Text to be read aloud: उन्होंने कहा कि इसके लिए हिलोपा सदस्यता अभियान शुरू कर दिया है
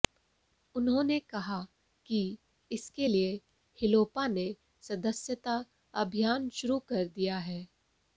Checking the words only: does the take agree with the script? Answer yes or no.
no